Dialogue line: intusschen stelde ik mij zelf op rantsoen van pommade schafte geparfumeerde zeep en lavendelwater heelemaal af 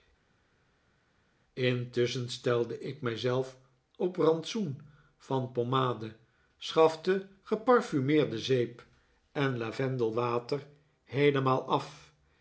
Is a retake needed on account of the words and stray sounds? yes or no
no